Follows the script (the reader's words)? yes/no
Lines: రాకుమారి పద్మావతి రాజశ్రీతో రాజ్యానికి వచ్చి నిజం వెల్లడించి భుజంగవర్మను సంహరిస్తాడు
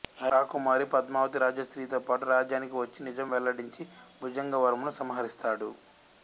no